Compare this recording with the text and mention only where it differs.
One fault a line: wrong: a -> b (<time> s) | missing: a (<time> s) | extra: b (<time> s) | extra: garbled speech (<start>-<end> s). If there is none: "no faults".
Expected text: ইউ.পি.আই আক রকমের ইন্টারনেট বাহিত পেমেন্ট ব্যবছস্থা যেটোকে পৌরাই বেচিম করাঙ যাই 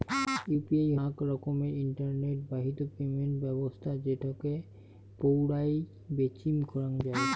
no faults